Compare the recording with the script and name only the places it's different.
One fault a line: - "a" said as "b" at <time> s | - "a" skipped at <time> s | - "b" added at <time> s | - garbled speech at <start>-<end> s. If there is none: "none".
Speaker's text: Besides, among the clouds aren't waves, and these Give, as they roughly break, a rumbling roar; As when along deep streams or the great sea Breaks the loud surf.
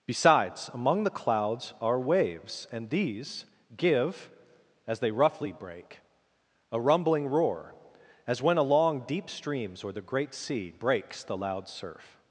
- "aren't" said as "are" at 1.8 s